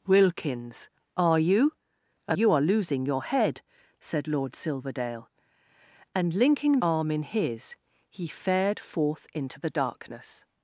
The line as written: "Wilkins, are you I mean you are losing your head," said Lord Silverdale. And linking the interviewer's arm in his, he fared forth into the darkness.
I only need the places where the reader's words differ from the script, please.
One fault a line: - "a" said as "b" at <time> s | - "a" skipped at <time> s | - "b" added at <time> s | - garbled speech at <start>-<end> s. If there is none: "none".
- "mean" skipped at 2.4 s
- "the interviewer's" skipped at 6.8 s